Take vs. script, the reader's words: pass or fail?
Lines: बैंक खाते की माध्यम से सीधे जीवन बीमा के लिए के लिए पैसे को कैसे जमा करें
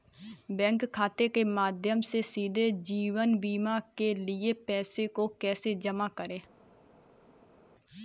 fail